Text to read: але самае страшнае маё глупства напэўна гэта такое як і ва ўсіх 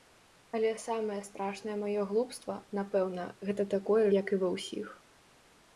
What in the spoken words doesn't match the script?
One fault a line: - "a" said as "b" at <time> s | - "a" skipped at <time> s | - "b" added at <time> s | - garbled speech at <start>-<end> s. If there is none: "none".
none